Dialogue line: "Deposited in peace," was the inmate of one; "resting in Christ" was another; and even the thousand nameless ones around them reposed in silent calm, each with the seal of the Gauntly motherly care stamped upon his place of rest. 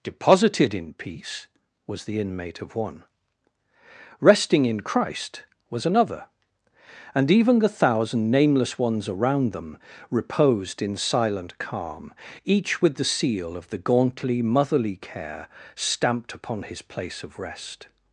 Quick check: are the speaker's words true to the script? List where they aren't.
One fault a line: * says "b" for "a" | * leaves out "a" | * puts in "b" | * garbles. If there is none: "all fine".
all fine